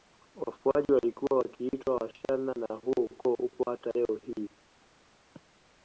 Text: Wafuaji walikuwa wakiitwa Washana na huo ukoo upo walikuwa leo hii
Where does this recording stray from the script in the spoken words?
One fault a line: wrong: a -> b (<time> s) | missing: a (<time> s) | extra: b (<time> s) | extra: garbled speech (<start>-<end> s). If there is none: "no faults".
wrong: walikuwa -> hata (3.7 s)